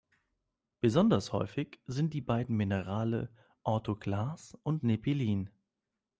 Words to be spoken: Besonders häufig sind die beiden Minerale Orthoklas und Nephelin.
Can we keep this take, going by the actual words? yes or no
yes